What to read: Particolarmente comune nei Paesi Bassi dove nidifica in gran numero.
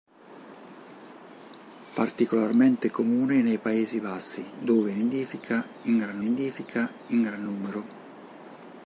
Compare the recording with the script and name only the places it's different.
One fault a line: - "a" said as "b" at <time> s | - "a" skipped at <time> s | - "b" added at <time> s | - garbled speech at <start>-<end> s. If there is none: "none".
- "nidifica in gran" added at 6.2 s